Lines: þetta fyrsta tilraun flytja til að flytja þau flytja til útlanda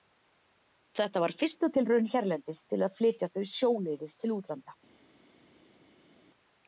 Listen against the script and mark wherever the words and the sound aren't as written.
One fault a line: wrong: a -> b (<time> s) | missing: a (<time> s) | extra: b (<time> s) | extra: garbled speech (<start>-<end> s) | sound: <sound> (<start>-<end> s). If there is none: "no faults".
extra: var (1.2 s)
wrong: flytja -> hérlendis (2.1 s)
wrong: flytja -> sjóleiðis (3.5 s)